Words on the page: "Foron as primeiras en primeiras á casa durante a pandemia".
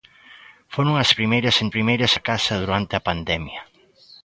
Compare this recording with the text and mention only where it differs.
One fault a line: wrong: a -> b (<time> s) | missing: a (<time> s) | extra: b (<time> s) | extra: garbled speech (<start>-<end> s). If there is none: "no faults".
no faults